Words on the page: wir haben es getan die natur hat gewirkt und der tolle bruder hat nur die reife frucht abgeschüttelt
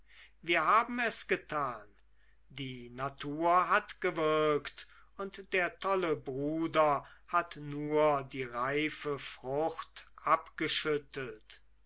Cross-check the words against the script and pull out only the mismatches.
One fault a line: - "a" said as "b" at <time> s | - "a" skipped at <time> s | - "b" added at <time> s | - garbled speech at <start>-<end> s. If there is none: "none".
none